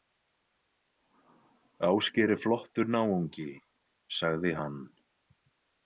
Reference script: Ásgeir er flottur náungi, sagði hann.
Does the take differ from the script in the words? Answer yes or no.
no